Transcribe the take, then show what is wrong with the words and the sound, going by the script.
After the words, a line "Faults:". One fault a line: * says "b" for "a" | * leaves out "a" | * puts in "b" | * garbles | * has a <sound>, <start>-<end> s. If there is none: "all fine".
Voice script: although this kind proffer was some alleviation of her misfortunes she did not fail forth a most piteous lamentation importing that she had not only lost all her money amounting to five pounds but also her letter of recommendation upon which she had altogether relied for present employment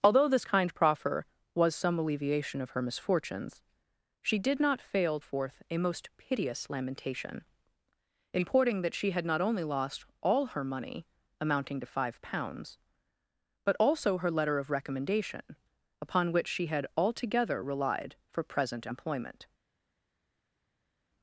although this kind proffer was some alleviation of her misfortunes she did not fail forth a most piteous lamentation importing that she had not only lost all her money amounting to five pounds but also her letter of recommendation upon which she had altogether relied for present employment
Faults:
all fine